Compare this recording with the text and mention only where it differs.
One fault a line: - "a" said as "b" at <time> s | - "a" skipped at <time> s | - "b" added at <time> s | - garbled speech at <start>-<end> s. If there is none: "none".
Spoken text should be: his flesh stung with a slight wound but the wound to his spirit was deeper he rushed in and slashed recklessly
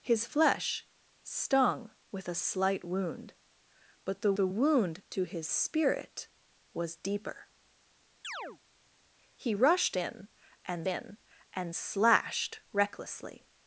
- "the" added at 4.3 s
- "in and" added at 10.9 s